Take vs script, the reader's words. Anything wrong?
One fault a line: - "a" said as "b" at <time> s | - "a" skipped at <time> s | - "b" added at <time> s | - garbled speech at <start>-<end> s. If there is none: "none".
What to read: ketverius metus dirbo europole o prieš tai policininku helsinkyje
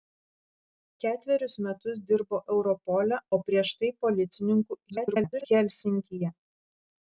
- garbled speech at 4.9-5.5 s